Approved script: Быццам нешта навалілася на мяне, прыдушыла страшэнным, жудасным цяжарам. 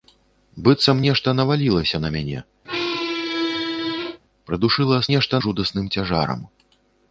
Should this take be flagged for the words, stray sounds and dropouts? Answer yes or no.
yes